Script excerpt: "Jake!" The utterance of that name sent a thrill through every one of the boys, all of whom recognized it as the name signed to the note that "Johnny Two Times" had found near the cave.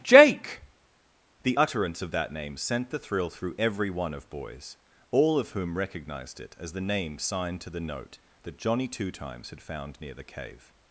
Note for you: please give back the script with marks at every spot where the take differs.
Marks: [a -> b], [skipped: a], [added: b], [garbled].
"Jake!" The utterance of that name sent [a -> the] thrill through every one of [skipped: the] boys, all of whom recognized it as the name signed to the note that "Johnny Two Times" had found near the cave.